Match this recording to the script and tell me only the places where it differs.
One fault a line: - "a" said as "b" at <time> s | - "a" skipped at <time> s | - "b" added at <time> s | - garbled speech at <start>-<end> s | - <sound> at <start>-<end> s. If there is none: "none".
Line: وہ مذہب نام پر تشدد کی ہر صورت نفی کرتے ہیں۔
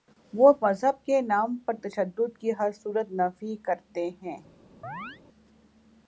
- "کے" added at 1.1 s
- chirp at 4.8-5.2 s